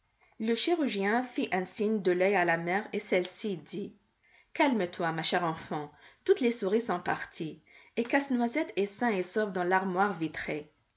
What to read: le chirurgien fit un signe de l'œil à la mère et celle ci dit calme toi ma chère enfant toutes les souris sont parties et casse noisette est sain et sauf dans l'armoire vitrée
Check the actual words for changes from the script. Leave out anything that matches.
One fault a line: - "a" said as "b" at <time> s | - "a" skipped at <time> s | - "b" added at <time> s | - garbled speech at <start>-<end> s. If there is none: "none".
none